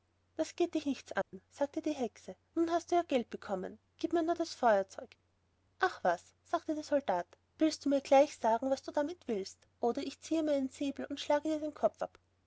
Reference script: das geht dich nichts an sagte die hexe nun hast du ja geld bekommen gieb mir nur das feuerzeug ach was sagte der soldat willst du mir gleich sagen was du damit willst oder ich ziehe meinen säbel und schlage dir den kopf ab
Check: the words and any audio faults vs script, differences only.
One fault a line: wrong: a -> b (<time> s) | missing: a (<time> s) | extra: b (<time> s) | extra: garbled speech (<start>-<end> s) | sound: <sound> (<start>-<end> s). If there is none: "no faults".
sound: dropout (1.2-1.3 s)